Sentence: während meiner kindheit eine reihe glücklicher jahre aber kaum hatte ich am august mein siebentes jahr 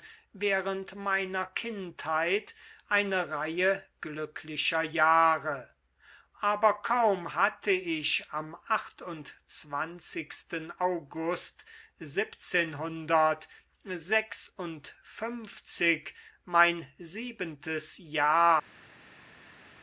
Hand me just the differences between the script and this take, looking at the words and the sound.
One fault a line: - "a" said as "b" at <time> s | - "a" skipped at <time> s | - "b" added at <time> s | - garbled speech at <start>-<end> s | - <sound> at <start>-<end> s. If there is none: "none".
none